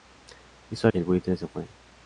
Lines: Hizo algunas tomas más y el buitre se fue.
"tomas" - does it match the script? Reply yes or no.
no